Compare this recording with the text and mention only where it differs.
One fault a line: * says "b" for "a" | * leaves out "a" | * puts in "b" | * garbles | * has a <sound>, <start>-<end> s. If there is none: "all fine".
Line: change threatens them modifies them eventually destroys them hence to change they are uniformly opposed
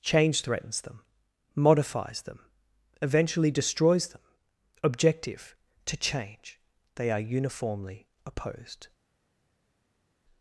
* says "objective" for "hence"